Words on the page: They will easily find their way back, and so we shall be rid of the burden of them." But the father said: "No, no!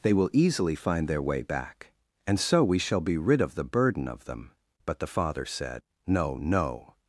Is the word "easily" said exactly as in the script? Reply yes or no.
yes